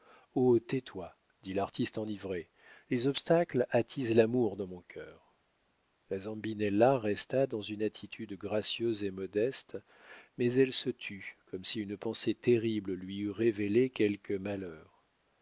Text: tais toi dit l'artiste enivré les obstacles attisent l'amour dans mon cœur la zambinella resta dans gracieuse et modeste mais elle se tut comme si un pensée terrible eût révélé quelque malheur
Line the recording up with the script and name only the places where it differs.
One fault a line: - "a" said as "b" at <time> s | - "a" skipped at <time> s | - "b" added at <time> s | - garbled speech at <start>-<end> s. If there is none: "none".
- "une attitude" added at 7.6 s
- "un" said as "une" at 11.8 s
- "lui" added at 12.9 s